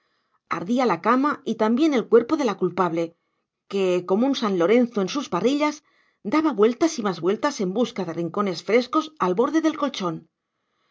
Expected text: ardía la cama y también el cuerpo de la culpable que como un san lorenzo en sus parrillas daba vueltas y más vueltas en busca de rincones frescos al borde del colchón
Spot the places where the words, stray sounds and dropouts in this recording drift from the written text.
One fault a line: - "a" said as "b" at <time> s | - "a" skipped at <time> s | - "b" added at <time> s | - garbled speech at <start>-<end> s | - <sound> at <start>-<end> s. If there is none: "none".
none